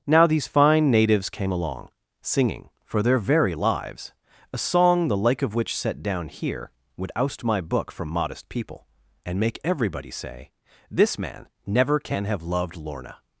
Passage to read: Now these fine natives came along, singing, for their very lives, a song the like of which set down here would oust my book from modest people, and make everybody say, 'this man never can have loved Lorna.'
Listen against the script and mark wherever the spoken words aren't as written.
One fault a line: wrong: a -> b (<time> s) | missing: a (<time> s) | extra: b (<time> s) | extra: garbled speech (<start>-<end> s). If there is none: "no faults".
no faults